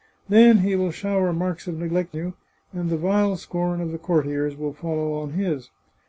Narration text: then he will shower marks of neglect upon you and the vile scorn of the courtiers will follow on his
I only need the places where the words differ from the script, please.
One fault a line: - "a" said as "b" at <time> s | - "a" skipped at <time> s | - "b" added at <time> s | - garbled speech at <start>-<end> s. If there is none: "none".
- "upon" skipped at 2.2 s